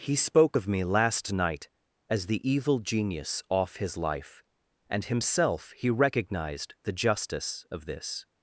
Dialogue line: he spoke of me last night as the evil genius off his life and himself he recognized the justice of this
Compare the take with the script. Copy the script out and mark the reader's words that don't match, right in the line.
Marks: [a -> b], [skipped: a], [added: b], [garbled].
he spoke of me last night as the evil genius off his life and himself he recognized the justice of this